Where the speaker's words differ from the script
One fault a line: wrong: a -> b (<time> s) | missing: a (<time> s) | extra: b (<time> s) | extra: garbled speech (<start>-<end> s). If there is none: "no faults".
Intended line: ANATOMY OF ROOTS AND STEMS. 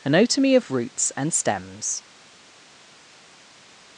no faults